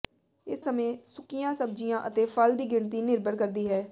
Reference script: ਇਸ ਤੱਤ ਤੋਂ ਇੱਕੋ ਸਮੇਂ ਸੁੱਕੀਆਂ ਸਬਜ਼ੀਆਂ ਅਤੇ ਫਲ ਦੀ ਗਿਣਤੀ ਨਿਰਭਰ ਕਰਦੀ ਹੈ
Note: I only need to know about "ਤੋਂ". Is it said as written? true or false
false